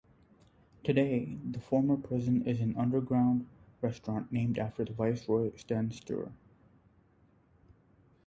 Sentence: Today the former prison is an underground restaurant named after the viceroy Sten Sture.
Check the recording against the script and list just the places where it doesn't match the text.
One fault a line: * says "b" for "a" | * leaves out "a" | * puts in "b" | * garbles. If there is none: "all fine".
all fine